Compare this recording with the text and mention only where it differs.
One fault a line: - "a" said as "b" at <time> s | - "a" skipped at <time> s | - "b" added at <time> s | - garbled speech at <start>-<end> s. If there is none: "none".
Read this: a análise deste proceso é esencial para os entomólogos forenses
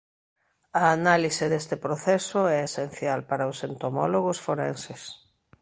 none